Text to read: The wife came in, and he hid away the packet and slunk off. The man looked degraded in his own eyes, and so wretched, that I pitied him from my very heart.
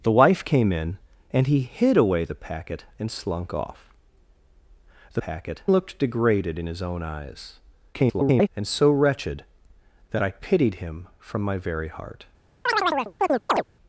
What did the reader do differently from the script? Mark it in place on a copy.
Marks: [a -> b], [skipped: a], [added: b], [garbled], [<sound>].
The wife came in, and he hid away the packet and slunk off. The [man -> packet] looked degraded in his own eyes, [garbled] and so wretched, that I pitied him from my very heart. [chirp]